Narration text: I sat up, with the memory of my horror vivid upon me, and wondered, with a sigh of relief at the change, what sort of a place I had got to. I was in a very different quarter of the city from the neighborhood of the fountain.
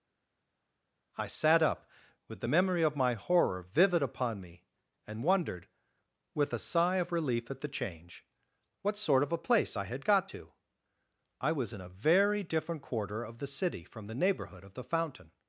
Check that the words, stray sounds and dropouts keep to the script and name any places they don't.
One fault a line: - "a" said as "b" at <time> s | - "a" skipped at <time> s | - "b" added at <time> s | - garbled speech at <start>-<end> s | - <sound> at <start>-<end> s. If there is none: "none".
none